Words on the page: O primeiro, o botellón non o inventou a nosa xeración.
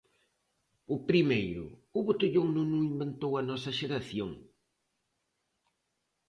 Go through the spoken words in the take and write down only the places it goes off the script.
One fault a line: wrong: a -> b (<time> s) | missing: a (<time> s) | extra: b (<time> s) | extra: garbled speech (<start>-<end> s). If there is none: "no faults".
no faults